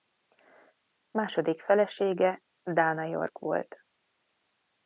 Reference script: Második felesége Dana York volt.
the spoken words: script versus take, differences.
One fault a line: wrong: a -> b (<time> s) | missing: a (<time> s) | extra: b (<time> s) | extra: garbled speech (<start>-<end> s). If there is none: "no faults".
no faults